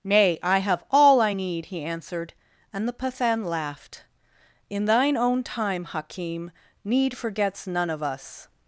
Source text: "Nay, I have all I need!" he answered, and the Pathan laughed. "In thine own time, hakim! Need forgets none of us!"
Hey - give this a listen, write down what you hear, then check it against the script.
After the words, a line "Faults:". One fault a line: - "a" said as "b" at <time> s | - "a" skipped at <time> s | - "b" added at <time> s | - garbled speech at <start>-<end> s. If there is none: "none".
"Nay, I have all I need!" he answered, and the Pathan laughed. "In thine own time, hakim! Need forgets none of us!"
Faults:
none